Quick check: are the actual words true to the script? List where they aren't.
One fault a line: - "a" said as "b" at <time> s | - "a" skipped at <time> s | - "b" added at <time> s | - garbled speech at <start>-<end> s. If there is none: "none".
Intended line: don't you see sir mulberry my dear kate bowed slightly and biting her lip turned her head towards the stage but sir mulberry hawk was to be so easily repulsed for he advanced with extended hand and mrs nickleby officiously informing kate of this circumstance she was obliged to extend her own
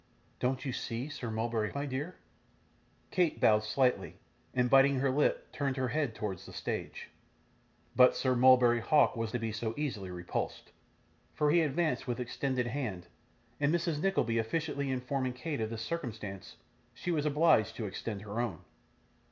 none